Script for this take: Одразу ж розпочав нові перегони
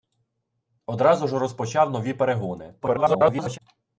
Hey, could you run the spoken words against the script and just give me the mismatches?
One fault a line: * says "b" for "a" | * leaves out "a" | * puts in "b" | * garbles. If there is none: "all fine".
* garbles